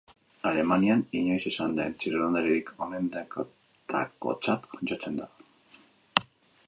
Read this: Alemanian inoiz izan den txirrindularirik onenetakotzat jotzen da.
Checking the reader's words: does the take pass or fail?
pass